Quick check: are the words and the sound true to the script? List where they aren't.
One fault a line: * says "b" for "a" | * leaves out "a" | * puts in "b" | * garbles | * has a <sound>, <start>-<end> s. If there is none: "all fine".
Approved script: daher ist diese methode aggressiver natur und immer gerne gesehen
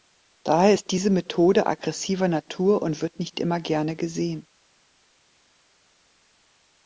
* puts in "wird nicht"